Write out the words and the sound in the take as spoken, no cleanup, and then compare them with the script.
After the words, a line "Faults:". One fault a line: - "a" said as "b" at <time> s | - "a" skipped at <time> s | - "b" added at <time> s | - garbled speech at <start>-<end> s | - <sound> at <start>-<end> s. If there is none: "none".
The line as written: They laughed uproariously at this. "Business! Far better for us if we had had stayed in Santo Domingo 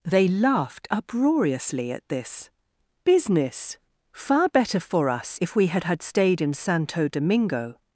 They laughed uproariously at this. "Business! Far better for us if we had had stayed in Santo Domingo
Faults:
none